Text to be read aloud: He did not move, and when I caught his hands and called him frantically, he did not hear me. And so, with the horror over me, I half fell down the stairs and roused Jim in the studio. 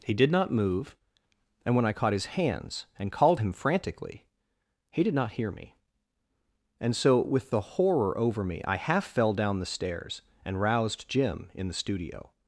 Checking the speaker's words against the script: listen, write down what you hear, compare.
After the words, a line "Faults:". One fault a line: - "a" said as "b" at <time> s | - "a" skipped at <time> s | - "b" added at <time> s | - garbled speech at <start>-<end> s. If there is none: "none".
He did not move, and when I caught his hands and called him frantically, he did not hear me. And so, with the horror over me, I half fell down the stairs and roused Jim in the studio.
Faults:
none